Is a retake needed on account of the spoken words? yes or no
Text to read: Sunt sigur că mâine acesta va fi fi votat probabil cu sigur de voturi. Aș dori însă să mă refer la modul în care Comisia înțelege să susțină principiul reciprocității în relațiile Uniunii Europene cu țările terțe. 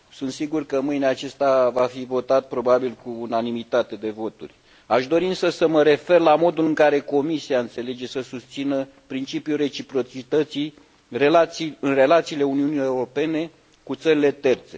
yes